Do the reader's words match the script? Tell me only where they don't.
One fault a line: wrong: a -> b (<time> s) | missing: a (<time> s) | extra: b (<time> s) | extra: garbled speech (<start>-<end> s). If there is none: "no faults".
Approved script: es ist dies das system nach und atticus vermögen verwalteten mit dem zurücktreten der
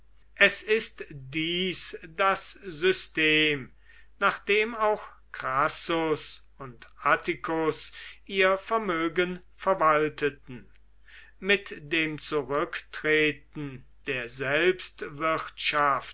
extra: dem auch crassus (4.4 s)
extra: ihr (8.2 s)